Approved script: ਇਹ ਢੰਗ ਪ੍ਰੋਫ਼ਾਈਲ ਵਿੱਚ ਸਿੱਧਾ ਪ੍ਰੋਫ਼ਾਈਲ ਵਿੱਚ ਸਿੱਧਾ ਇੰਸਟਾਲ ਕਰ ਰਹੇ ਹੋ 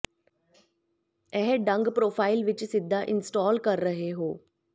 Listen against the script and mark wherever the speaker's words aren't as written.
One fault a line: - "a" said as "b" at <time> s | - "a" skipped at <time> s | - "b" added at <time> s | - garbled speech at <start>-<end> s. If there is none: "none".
- "ਪ੍ਰੋਫ਼ਾਈਲ ਵਿੱਚ ਸਿੱਧਾ" skipped at 3.0 s